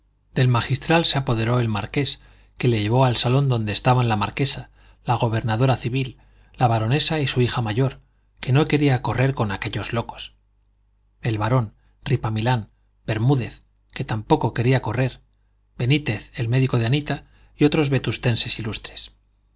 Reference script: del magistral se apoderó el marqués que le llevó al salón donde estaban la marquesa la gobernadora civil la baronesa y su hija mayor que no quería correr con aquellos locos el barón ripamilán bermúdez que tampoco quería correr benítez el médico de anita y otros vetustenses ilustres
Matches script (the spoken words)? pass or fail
pass